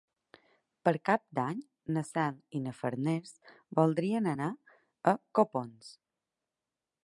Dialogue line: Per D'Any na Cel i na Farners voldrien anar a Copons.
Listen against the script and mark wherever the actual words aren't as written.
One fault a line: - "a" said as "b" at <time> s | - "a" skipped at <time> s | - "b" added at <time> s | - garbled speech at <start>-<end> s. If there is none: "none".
- "Cap" added at 1.1 s